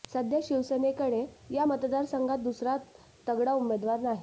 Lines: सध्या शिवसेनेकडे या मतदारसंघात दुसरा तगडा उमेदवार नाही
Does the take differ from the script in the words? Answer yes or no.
no